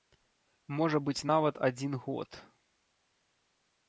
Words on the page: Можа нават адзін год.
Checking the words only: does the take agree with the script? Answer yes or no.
no